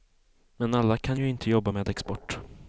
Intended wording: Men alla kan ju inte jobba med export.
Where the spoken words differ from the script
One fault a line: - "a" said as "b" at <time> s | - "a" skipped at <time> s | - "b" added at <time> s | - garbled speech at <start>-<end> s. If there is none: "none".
none